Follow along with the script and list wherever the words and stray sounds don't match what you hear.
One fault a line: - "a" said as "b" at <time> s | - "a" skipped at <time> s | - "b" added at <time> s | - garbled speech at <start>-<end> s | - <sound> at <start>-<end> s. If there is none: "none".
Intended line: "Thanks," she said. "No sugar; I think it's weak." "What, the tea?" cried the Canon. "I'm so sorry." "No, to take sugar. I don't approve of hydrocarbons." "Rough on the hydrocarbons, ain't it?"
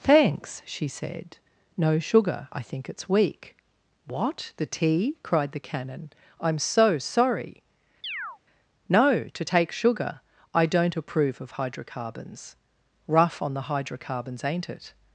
- chirp at 8.0-8.4 s